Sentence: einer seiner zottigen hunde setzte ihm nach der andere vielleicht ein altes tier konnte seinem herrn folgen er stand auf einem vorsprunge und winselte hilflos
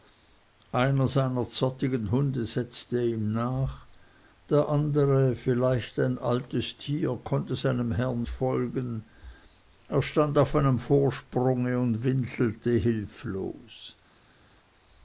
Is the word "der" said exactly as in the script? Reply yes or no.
yes